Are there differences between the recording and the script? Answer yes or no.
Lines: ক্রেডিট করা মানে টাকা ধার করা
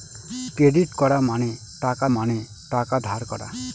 yes